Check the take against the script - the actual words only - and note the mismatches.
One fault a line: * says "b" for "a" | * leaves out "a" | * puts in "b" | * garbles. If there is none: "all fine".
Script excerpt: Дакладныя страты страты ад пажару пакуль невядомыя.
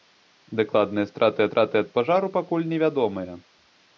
all fine